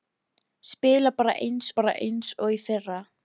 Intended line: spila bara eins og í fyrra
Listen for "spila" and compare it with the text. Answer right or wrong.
right